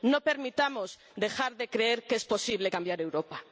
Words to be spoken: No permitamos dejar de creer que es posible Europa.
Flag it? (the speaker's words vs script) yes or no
yes